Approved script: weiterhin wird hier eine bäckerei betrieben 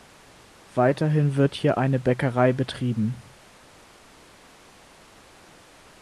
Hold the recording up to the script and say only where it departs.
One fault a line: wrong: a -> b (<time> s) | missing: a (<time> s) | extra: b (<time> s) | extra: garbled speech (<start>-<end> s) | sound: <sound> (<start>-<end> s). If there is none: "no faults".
no faults